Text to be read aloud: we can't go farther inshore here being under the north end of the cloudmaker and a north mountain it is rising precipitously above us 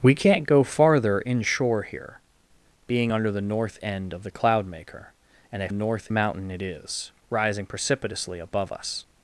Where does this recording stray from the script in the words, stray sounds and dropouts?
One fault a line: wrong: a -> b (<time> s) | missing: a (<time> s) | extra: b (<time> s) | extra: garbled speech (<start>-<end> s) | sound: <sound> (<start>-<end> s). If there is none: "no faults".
no faults